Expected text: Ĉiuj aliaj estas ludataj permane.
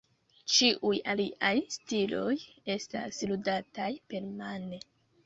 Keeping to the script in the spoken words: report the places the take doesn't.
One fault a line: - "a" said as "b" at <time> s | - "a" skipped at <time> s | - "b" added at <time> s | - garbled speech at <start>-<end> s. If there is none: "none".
- "stiloj" added at 1.8 s